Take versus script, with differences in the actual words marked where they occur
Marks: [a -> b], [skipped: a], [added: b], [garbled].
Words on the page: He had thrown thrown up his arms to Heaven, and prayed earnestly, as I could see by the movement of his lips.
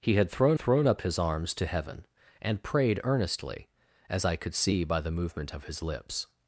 He had thrown thrown up his arms to Heaven, and prayed earnestly, as I could see by the movement of his lips.